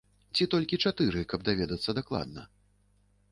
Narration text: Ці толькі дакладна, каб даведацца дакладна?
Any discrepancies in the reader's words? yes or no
yes